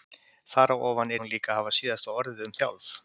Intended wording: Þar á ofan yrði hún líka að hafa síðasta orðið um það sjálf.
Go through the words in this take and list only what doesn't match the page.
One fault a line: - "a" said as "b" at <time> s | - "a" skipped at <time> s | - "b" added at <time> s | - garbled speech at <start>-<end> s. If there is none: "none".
- "yrði" skipped at 1.1 s
- "það" skipped at 2.6 s